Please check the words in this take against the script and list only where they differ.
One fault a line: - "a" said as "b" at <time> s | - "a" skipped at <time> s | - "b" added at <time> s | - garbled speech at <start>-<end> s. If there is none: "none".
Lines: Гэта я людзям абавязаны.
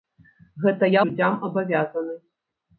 none